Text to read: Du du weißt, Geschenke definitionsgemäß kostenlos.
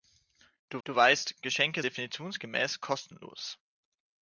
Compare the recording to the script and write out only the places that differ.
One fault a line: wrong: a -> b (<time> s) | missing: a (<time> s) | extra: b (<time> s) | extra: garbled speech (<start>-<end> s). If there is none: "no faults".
no faults